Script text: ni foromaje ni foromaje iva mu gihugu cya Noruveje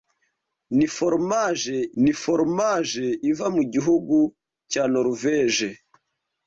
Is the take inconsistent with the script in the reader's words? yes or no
no